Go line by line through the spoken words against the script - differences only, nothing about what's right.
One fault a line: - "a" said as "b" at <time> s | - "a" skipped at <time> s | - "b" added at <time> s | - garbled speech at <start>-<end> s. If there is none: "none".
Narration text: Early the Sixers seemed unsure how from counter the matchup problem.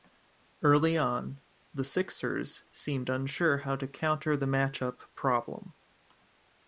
- "on" added at 1.0 s
- "from" said as "to" at 3.8 s